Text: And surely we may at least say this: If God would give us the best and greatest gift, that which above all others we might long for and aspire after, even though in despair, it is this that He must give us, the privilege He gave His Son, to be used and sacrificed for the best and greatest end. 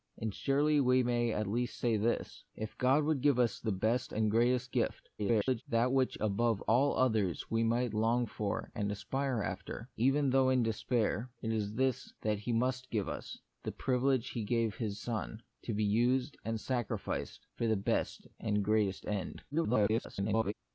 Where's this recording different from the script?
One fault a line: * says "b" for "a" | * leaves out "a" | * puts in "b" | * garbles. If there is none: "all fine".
* garbles
* garbles